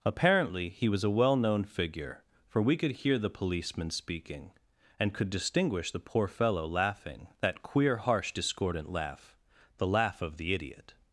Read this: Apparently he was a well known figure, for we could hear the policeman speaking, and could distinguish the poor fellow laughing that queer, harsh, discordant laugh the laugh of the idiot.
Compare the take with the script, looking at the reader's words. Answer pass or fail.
pass